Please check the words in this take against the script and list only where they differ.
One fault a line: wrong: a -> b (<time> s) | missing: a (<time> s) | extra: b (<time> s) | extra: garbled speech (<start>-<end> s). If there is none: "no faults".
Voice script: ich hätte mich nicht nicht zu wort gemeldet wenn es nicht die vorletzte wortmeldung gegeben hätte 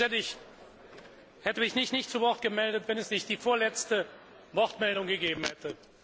no faults